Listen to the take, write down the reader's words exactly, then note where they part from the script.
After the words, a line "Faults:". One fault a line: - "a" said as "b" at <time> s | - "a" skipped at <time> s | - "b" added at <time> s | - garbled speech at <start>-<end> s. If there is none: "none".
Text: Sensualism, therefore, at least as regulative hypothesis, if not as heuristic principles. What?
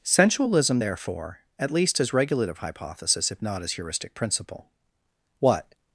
Sensualism, therefore, at least as regulative hypothesis, if not as heuristic principle. What?
Faults:
- "principles" said as "principle" at 4.1 s